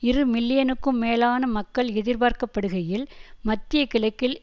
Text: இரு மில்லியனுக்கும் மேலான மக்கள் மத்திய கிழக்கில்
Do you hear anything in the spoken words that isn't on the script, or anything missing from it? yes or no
yes